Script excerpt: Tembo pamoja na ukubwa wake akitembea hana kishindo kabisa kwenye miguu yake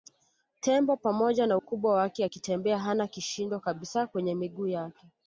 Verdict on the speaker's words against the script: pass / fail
pass